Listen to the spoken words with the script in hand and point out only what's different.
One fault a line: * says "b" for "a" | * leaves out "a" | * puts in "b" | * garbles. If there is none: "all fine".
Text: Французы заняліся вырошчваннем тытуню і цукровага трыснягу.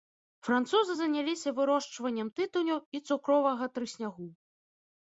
all fine